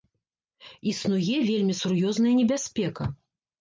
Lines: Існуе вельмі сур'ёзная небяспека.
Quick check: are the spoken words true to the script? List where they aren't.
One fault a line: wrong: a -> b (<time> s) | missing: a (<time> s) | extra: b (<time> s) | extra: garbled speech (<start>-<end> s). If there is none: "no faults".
no faults